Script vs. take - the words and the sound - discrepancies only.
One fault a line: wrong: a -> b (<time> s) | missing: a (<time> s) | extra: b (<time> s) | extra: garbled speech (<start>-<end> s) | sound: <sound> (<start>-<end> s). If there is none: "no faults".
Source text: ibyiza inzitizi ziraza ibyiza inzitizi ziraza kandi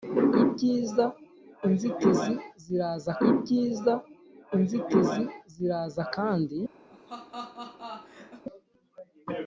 sound: laugh (6.9-8.4 s)